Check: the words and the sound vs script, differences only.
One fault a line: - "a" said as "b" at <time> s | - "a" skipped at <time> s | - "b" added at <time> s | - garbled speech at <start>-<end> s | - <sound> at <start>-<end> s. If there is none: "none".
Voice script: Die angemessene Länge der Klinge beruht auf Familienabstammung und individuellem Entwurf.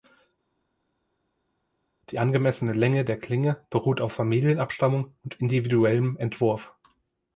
none